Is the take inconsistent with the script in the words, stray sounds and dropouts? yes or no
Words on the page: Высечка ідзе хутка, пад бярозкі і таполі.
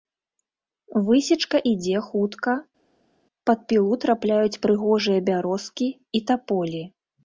yes